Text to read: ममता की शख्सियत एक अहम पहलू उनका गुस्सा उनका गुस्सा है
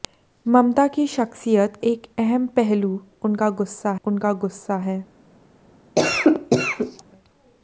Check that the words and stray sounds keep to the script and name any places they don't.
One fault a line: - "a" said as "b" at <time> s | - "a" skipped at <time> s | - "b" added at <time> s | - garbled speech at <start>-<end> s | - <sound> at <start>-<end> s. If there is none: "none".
- cough at 6.0-7.0 s